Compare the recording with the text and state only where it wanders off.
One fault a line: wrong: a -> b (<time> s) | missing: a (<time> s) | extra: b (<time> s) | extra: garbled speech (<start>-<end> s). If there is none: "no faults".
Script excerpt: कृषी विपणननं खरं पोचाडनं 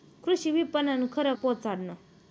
no faults